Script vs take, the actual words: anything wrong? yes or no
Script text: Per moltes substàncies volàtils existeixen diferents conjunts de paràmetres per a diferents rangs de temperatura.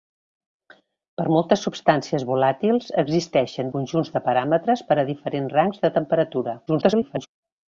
yes